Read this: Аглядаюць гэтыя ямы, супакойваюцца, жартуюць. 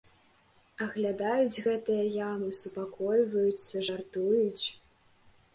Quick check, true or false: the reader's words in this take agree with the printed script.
true